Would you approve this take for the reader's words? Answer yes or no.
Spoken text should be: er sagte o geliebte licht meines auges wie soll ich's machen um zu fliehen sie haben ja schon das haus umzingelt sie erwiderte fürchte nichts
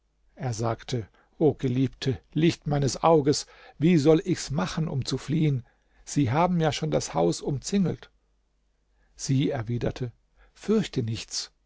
yes